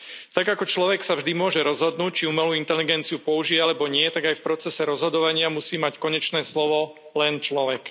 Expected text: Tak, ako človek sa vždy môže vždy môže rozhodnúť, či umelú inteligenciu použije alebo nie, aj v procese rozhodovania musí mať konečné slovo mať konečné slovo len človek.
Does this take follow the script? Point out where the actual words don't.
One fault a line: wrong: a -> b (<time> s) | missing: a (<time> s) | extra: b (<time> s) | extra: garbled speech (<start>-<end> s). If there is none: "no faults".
missing: vždy môže (1.6 s)
extra: tak (4.1 s)
missing: mať konečné slovo (7.0 s)